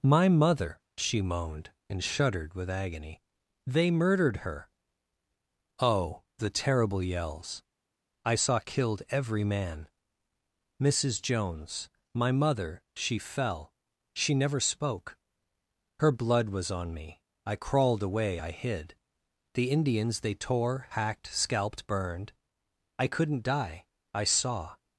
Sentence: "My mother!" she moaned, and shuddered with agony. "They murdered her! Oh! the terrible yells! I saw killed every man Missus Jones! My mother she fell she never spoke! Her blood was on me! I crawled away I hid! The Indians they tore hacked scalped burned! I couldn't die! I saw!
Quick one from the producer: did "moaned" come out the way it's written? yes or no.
yes